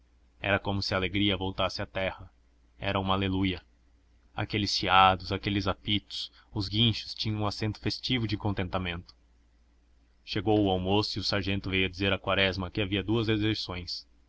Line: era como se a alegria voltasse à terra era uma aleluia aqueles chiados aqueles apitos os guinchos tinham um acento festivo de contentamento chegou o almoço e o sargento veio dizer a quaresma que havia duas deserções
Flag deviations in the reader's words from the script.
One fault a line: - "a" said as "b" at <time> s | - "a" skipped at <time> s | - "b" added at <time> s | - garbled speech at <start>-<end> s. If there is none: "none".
none